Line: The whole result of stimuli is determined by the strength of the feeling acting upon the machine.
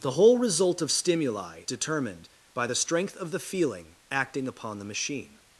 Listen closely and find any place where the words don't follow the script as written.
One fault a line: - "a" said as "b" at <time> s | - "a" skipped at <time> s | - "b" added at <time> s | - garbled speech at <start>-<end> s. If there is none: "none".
- "is" skipped at 1.6 s